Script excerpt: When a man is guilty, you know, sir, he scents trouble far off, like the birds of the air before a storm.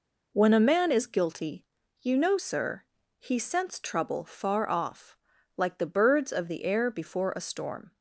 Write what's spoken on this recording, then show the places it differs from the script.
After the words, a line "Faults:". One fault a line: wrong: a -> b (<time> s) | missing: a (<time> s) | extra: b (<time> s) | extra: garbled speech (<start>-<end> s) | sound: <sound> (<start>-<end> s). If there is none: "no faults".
When a man is guilty, you know, sir, he scents trouble far off, like the birds of the air before a storm.
Faults:
no faults